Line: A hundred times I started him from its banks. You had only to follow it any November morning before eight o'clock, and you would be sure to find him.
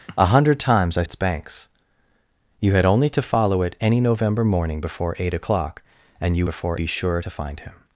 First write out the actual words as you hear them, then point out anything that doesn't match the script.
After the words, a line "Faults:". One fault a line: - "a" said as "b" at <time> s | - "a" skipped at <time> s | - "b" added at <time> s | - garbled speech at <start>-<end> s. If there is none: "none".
A hundred times I its banks. You had only to follow it any November morning before eight o'clock, and you before be sure to find him.
Faults:
- "started him from" skipped at 1.0 s
- "would" said as "before" at 6.4 s